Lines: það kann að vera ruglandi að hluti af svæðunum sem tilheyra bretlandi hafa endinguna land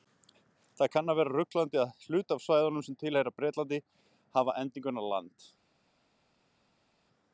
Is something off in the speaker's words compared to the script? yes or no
no